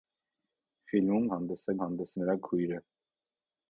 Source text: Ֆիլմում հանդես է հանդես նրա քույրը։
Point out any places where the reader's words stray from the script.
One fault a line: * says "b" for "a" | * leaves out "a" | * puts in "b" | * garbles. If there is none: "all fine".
all fine